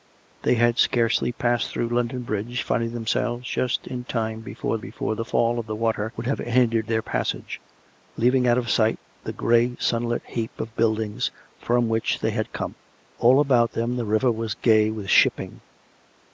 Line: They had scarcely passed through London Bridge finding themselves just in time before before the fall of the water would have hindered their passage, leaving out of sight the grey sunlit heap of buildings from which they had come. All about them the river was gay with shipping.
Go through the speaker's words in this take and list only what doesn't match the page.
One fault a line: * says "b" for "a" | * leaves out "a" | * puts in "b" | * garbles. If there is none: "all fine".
all fine